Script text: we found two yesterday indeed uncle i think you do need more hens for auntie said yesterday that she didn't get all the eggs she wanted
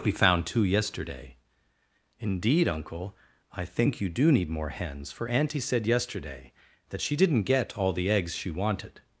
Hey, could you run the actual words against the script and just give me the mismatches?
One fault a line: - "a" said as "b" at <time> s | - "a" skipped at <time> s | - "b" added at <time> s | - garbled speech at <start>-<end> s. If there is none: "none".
none